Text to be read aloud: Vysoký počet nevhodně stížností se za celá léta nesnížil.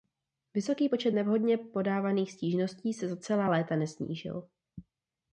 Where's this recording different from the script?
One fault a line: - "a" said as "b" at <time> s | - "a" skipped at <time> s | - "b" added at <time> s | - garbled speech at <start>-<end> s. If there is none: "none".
- "podávaných" added at 1.6 s